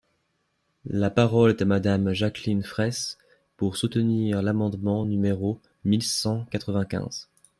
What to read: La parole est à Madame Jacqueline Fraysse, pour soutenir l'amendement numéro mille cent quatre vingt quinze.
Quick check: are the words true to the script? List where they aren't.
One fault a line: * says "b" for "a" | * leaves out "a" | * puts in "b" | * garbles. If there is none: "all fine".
all fine